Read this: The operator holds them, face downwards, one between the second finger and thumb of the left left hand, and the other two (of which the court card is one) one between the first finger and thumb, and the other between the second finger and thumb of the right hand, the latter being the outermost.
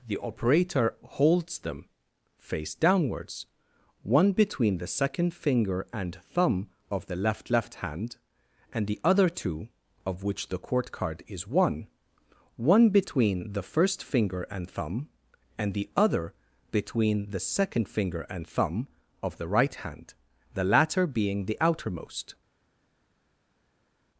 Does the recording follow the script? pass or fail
pass